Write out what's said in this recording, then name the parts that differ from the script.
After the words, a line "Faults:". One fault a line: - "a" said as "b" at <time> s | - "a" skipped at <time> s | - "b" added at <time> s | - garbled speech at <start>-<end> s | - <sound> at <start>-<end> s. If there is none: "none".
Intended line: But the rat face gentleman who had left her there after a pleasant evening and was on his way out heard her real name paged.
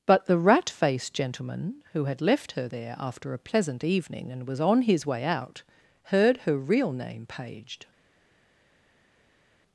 But the rat faced gentleman who had left her there after a pleasant evening and was on his way out heard her real name paged.
Faults:
- "face" said as "faced" at 0.7 s